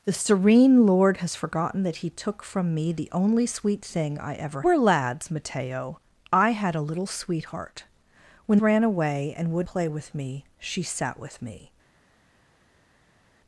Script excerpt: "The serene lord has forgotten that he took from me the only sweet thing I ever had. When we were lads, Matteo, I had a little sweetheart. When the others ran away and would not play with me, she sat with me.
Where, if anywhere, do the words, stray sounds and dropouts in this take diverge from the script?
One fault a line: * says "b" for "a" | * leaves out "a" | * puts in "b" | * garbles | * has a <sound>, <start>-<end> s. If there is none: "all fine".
* leaves out "had When we"
* leaves out "the others"
* leaves out "not"